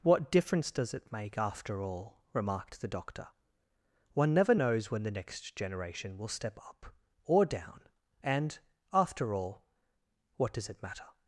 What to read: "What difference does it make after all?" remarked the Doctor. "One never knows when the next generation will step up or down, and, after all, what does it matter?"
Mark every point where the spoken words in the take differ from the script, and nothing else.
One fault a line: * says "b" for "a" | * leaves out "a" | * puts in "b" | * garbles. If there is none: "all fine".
all fine